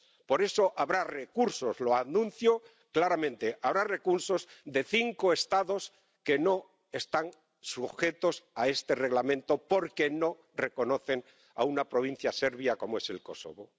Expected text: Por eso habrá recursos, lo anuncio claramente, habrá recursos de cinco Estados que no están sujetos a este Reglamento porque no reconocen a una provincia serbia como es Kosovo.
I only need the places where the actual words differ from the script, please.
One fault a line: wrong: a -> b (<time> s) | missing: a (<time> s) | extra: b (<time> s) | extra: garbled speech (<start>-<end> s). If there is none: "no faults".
no faults